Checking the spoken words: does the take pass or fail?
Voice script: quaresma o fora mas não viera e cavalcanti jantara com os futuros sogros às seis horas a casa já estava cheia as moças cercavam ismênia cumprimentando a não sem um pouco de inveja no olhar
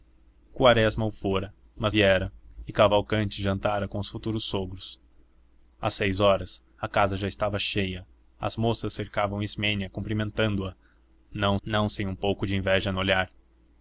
fail